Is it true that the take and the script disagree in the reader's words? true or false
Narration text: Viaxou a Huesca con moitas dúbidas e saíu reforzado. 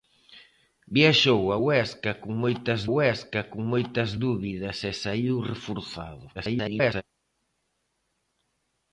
true